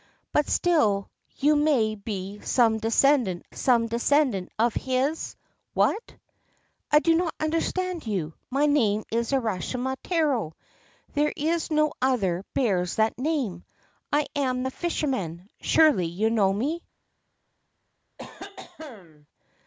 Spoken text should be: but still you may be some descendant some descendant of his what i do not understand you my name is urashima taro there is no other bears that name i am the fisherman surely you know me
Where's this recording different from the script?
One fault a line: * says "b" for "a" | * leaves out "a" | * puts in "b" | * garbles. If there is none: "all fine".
all fine